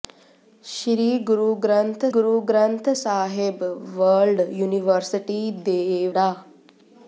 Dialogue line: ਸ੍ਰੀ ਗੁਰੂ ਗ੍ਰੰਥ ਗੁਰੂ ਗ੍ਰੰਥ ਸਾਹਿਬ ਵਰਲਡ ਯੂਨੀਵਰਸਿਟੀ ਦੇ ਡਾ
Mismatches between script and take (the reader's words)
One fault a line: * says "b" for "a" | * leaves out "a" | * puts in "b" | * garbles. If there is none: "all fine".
all fine